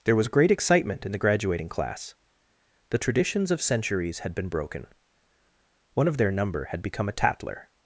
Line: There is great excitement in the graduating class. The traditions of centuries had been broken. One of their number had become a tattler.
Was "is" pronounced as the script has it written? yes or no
no